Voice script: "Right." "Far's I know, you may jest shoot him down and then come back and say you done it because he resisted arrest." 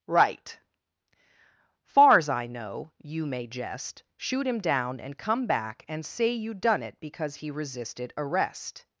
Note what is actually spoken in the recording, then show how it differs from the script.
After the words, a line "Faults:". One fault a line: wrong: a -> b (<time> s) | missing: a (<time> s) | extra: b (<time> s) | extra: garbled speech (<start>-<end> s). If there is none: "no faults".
"Right." "Far's I know, you may jest shoot him down and come back and say you done it because he resisted arrest."
Faults:
missing: then (5.2 s)